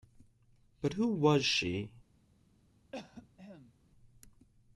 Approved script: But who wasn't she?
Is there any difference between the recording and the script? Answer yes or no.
yes